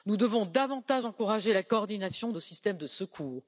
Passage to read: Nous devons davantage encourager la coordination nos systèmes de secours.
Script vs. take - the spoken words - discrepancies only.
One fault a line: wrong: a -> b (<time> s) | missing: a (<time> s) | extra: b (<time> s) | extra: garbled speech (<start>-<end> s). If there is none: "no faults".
no faults